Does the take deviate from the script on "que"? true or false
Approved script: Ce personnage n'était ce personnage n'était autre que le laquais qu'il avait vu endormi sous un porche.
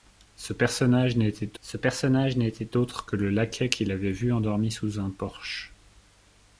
false